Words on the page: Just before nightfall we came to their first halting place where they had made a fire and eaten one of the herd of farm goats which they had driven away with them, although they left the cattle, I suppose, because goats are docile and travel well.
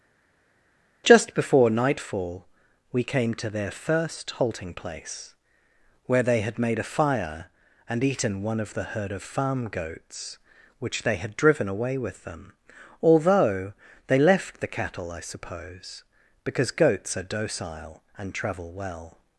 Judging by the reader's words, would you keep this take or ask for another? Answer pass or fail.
pass